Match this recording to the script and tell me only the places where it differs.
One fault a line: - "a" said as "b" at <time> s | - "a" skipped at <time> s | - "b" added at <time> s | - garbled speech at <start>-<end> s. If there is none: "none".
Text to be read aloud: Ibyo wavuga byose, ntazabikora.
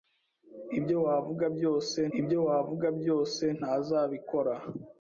- "ibyo wavuga byose" added at 2.2 s